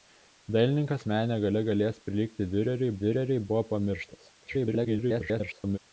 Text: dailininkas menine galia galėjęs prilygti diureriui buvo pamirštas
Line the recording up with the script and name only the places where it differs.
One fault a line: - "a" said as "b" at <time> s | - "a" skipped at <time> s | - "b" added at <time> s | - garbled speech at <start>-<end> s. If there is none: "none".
- "diureriui" added at 3.0 s
- garbled speech at 4.4-5.8 s